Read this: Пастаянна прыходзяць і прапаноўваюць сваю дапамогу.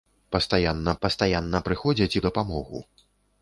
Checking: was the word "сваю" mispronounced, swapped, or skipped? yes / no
yes